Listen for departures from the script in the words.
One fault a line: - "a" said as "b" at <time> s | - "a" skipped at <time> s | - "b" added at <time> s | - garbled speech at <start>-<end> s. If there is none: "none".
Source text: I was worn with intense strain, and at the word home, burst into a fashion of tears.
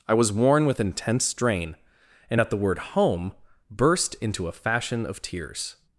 none